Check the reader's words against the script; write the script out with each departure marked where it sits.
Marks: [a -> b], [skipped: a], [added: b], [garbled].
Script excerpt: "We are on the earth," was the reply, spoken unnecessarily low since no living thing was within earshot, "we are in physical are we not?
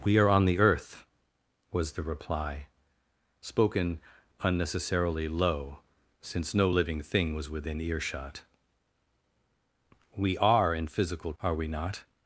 "We are on the earth," was the reply, spoken unnecessarily low since no living thing was within earshot, "we are in physical are we not?